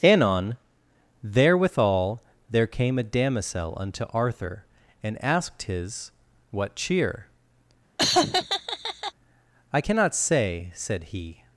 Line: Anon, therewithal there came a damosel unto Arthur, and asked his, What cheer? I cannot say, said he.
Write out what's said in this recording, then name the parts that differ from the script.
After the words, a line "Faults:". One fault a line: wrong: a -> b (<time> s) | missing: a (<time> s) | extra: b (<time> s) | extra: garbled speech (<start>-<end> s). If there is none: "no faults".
Anon, therewithal there came a damosel unto Arthur, and asked his, What cheer? I cannot say, said he.
Faults:
no faults